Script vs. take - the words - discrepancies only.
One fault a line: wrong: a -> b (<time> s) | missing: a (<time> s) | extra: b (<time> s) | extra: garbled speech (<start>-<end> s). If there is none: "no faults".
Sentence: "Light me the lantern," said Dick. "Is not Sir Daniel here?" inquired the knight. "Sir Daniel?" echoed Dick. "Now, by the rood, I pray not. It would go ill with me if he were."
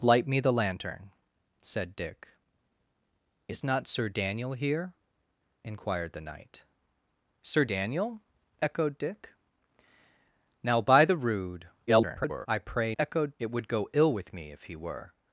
extra: garbled speech (11.9-12.5 s)
wrong: not -> echoed (13.0 s)